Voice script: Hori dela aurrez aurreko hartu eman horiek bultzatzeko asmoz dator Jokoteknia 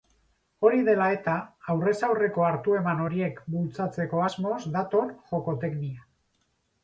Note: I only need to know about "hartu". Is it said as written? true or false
true